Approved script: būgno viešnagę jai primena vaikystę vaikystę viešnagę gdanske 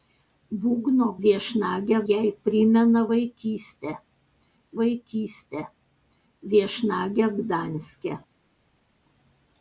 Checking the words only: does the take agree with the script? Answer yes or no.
yes